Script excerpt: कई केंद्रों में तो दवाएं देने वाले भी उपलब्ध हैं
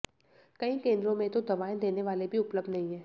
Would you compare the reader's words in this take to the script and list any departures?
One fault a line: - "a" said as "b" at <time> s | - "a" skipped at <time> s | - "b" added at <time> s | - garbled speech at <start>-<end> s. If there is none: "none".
- "नहीं" added at 2.7 s